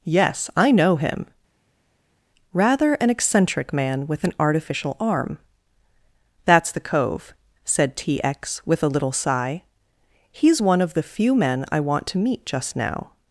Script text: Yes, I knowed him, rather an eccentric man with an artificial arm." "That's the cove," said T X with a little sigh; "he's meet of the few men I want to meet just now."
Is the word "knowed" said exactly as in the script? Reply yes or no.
no